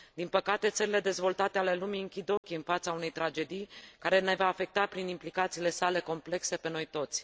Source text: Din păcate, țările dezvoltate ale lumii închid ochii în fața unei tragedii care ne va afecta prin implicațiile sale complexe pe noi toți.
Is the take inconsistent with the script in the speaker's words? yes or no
no